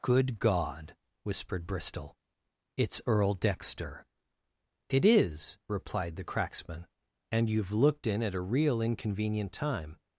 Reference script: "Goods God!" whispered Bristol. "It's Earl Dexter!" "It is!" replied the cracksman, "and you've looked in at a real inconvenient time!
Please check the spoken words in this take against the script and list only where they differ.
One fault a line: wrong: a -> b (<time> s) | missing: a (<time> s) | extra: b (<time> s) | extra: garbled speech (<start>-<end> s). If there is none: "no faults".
wrong: Goods -> Good (0.0 s)